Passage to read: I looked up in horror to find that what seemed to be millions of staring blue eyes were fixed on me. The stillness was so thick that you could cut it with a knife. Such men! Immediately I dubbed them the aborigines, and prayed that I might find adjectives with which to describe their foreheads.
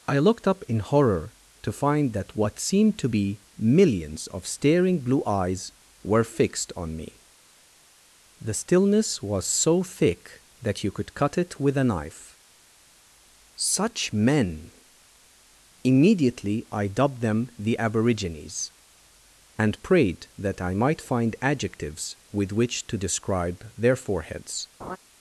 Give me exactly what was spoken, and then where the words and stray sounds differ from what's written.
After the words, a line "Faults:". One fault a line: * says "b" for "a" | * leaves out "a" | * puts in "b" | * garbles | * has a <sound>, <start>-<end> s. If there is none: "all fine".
I looked up in horror to find that what seemed to be millions of staring blue eyes were fixed on me. The stillness was so thick that you could cut it with a knife. Such men! Immediately I dubbed them the aborigines, and prayed that I might find adjectives with which to describe their foreheads.
Faults:
* has a laugh, 24.8-25.0 s